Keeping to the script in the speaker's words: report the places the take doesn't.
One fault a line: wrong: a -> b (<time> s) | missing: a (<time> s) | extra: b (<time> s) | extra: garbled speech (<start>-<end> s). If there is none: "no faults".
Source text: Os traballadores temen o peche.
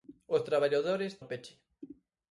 missing: temen (1.1 s)